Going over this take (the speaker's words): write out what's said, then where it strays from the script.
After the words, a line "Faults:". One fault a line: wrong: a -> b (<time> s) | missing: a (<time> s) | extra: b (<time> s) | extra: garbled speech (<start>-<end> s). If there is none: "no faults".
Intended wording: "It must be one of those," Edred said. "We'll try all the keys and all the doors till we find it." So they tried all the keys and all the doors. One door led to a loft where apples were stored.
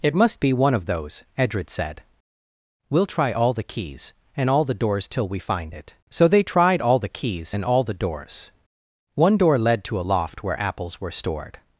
"It must be one of those," Edred said. "We'll try all the keys and all the doors till we find it." So they tried all the keys and all the doors. One door led to a loft where apples were stored.
Faults:
no faults